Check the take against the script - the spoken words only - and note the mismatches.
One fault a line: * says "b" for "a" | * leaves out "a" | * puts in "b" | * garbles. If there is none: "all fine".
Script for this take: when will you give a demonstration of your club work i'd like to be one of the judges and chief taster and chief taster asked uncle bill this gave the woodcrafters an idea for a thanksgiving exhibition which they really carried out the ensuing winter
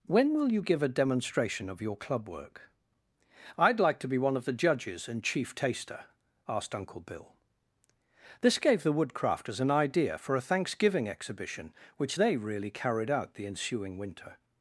* leaves out "and chief taster"